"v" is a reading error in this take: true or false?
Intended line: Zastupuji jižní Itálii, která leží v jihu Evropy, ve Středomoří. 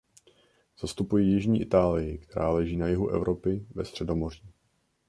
true